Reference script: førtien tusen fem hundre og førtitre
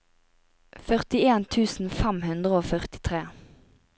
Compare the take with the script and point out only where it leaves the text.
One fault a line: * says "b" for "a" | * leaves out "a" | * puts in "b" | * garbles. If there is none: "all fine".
all fine